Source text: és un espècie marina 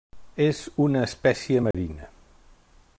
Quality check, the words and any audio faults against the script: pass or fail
fail